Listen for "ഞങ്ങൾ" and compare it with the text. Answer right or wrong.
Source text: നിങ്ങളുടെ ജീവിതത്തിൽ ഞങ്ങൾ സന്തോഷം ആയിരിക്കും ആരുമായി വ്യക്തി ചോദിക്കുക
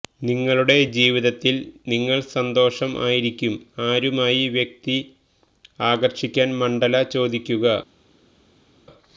wrong